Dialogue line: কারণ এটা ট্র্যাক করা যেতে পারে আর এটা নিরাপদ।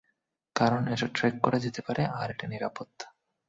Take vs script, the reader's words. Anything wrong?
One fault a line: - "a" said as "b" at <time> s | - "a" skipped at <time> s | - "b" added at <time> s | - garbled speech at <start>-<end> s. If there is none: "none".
none